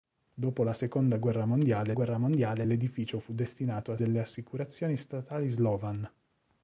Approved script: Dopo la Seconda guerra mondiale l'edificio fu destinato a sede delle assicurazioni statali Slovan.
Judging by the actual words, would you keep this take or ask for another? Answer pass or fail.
fail